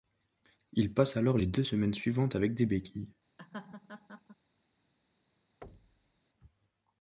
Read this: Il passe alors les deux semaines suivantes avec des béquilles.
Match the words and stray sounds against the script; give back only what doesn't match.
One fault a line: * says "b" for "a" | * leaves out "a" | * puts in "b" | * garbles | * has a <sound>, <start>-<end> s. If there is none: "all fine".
* has a laugh, 3.4-4.4 s
* has a thud, 5.6-6.2 s